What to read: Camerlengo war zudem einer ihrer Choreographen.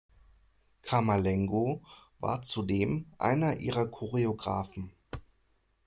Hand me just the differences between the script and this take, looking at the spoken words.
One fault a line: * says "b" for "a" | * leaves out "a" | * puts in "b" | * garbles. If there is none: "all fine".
all fine